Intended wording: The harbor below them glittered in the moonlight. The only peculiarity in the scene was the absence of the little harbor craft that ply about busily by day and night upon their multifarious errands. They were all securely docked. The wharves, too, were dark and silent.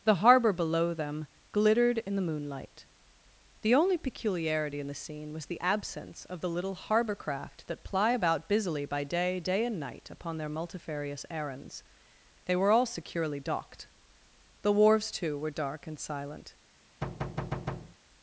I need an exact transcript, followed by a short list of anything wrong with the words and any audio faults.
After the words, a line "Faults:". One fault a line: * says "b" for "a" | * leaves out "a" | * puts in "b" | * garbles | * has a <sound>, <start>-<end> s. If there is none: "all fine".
The harbor below them glittered in the moonlight. The only peculiarity in the scene was the absence of the little harbor craft that ply about busily by day day and night upon their multifarious errands. They were all securely docked. The wharves, too, were dark and silent.
Faults:
* puts in "day"
* has a thud, 17.0-18.0 s